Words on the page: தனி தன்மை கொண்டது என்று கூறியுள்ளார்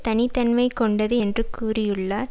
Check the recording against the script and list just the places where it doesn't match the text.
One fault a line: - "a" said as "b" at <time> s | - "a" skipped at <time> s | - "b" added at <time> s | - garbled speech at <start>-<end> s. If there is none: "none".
none